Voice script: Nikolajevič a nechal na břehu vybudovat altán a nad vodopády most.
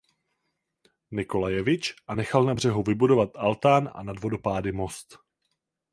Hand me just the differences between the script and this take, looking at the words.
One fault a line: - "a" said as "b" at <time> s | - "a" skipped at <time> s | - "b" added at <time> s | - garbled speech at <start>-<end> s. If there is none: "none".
none